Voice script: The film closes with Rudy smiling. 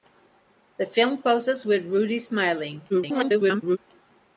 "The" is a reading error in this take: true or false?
false